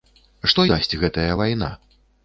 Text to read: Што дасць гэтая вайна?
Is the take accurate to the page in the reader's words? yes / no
yes